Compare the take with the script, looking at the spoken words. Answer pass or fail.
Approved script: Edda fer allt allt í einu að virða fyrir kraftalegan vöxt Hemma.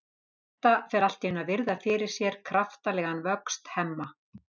fail